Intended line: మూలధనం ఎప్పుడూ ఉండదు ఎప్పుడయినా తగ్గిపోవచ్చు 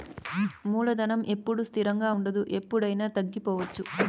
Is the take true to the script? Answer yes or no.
no